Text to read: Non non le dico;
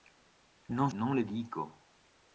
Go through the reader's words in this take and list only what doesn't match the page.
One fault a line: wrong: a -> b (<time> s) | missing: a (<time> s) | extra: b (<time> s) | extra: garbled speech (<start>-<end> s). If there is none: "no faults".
no faults